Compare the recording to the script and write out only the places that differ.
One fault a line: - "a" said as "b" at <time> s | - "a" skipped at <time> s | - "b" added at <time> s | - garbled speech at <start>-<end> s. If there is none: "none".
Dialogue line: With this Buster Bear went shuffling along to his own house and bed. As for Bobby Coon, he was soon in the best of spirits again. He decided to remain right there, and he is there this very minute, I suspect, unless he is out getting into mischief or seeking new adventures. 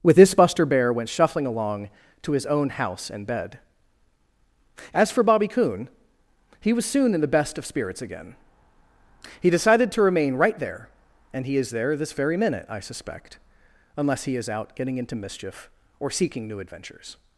none